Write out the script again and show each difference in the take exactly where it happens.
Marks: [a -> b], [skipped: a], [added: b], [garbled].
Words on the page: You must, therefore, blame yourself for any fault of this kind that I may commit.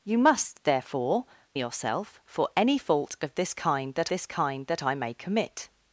You must, therefore, [skipped: blame] yourself for any fault of this kind that [added: this kind that] I may commit.